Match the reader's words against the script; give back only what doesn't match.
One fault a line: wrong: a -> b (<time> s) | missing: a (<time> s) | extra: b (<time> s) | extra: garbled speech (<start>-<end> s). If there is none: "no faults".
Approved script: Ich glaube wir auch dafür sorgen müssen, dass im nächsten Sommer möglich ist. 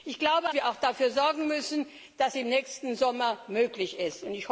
no faults